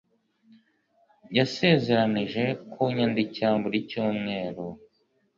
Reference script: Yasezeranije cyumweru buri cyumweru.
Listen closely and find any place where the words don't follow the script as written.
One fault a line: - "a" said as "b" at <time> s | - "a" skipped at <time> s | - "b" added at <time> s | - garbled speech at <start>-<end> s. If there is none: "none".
- "cyumweru" said as "kunyandikira" at 2.7 s